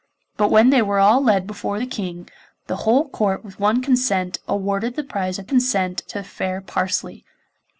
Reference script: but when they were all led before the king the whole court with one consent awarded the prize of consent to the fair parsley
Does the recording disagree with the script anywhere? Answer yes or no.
no